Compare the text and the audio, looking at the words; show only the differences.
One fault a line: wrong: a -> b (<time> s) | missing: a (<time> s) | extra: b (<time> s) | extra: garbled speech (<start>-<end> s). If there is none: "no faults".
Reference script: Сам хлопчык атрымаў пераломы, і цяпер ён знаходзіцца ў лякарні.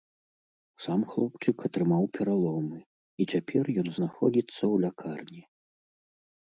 no faults